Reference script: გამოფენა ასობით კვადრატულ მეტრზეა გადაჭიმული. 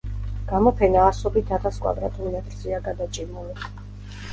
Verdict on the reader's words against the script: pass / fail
fail